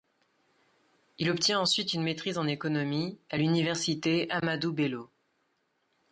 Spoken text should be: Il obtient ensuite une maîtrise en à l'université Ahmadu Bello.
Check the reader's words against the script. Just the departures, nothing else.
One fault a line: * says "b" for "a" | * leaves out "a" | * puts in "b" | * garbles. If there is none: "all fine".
* puts in "économie"